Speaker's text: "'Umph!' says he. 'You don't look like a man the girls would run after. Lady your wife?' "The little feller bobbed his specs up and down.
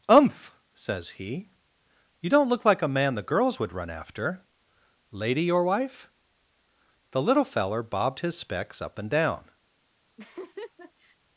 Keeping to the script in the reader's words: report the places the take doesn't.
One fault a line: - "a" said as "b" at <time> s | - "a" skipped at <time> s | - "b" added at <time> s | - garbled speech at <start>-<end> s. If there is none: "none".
none